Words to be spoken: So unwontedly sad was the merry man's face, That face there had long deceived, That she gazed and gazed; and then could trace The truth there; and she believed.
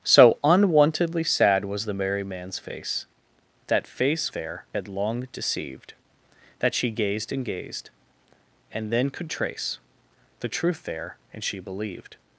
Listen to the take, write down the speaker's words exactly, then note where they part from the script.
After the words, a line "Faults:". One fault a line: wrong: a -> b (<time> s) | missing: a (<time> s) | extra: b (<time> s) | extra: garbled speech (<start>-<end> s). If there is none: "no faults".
So unwontedly sad was the merry man's face, That face there had long deceived, That she gazed and gazed; and then could trace The truth there; and she believed.
Faults:
no faults